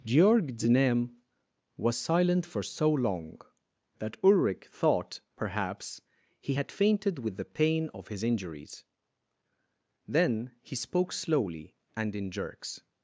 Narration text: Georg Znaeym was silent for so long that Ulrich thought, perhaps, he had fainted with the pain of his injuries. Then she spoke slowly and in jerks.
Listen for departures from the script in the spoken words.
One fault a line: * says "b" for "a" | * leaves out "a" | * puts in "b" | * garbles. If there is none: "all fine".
* says "he" for "she"